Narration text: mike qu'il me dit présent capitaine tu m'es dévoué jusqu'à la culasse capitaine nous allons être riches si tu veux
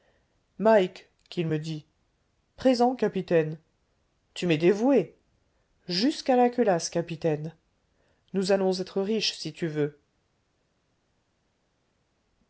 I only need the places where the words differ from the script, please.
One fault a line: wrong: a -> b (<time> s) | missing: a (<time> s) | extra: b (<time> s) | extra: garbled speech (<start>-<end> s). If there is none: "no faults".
no faults